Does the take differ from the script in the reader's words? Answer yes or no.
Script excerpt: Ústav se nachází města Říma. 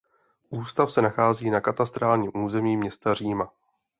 yes